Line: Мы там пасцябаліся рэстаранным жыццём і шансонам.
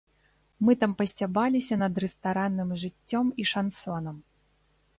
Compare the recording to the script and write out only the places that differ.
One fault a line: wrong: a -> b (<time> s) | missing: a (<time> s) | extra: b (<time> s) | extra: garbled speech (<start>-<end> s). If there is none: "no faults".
extra: над (1.8 s)